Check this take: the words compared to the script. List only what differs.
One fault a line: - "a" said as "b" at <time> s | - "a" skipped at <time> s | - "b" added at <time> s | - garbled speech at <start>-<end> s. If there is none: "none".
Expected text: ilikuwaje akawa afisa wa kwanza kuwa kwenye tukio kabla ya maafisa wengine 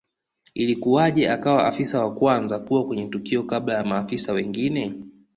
none